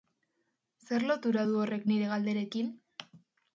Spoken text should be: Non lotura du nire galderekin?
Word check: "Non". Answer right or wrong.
wrong